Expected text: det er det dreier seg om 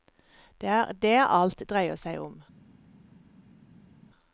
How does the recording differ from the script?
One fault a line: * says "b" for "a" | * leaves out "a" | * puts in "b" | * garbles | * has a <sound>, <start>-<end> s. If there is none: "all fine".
* puts in "alt"